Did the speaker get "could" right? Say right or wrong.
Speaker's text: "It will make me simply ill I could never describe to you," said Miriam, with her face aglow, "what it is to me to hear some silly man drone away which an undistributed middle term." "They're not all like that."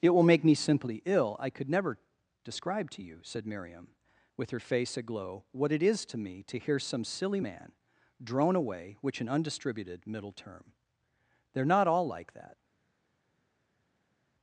right